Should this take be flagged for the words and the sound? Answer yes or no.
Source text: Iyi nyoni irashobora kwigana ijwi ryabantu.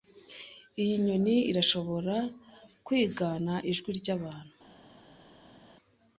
no